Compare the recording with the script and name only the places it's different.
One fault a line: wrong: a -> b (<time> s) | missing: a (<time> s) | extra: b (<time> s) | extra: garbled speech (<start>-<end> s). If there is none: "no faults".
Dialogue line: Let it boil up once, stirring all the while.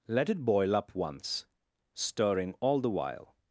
no faults